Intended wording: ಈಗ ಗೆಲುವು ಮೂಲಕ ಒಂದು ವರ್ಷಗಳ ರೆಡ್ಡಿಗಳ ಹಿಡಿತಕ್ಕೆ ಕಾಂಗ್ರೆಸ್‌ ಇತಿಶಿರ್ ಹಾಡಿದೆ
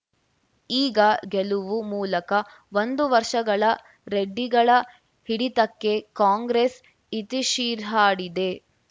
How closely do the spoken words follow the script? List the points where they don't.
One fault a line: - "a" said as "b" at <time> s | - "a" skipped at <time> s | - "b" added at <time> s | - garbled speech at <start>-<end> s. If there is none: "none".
none